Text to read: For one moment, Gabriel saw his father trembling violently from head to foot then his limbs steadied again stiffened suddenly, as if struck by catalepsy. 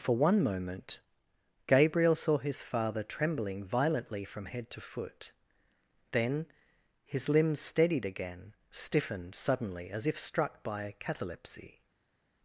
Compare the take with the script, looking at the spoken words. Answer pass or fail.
pass